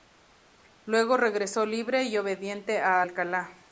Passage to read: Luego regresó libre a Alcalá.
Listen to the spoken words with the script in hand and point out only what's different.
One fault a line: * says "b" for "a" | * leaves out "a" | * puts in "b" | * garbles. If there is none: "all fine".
* puts in "y obediente"